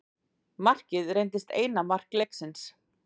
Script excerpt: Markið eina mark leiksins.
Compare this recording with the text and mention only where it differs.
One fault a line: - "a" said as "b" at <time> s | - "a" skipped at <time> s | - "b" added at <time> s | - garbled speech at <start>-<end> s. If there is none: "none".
- "reyndist" added at 1.2 s